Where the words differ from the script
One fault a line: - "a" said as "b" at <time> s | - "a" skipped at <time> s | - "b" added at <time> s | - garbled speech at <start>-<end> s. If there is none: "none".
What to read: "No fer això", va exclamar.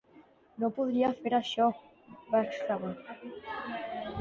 - "podria" added at 0.8 s